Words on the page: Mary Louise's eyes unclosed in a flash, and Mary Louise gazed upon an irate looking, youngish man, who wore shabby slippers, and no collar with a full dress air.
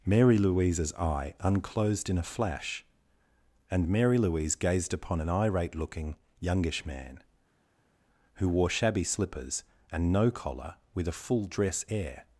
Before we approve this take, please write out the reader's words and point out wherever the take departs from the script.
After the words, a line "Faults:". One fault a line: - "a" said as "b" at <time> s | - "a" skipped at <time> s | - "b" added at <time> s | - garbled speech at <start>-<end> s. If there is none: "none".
Mary Louise's eye unclosed in a flash, and Mary Louise gazed upon an irate looking, youngish man, who wore shabby slippers, and no collar with a full dress air.
Faults:
- "eyes" said as "eye" at 0.9 s